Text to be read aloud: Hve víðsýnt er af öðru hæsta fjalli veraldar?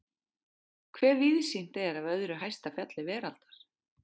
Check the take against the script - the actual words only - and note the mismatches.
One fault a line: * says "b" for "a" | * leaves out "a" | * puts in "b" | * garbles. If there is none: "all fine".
all fine